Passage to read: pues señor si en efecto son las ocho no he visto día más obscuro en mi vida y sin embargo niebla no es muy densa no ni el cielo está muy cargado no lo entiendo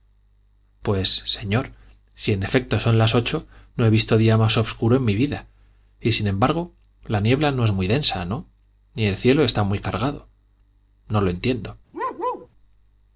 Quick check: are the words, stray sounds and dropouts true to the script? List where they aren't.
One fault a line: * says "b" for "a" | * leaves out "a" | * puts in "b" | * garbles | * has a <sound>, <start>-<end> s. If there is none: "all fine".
* puts in "la"
* has a bark, 11.9-12.5 s